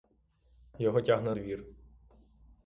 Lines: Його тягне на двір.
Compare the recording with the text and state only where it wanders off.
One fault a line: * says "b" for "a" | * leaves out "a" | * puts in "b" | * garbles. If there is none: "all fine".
* leaves out "на"